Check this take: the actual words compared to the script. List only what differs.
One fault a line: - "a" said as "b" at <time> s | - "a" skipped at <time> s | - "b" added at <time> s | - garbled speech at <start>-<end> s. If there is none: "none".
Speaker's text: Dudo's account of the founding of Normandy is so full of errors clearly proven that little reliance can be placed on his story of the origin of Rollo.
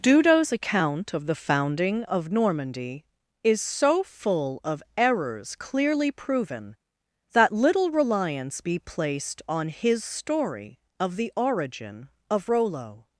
- "can" skipped at 8.6 s